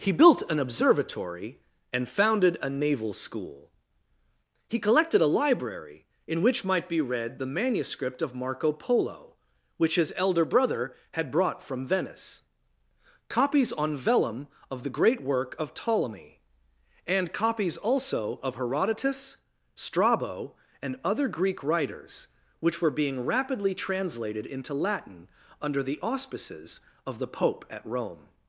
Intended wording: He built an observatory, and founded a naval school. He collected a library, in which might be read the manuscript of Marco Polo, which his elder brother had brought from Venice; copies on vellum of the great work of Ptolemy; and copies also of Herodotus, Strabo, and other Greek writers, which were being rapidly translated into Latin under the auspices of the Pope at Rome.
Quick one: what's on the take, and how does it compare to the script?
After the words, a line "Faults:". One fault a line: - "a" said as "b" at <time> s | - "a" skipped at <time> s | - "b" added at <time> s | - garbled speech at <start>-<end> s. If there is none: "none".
He built an observatory, and founded a naval school. He collected a library, in which might be read the manuscript of Marco Polo, which his elder brother had brought from Venice; copies on vellum of the great work of Ptolemy; and copies also of Herodotus, Strabo, and other Greek writers, which were being rapidly translated into Latin under the auspices of the Pope at Rome.
Faults:
none